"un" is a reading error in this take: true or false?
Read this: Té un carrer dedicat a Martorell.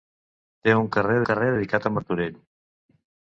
false